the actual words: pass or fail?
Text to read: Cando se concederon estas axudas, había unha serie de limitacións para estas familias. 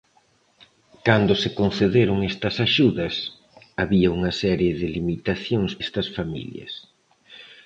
fail